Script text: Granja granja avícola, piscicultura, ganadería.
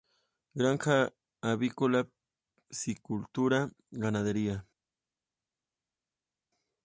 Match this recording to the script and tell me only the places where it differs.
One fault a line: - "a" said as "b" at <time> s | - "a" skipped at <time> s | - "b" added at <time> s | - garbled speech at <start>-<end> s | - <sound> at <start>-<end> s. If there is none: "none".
- "granja" skipped at 1.1 s